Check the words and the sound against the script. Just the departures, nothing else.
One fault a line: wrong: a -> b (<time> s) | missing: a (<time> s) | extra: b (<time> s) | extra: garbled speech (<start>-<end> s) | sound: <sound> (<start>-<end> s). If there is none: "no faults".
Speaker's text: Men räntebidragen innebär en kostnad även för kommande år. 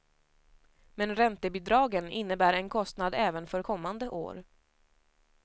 no faults